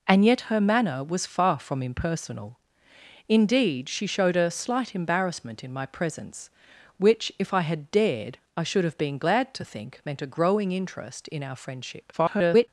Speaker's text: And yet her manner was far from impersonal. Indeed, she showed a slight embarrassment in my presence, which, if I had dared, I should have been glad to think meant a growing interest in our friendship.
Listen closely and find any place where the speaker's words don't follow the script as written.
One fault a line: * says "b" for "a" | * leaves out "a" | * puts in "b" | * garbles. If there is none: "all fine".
* garbles